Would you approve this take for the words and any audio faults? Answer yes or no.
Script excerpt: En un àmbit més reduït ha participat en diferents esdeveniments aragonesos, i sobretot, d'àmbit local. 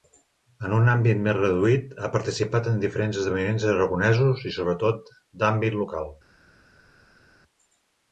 yes